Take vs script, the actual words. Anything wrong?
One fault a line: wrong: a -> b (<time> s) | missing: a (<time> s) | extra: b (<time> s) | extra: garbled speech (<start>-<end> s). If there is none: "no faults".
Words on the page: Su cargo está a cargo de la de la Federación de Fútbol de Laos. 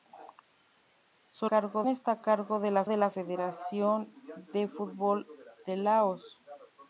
no faults